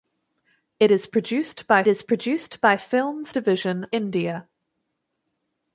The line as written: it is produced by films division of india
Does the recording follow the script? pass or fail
fail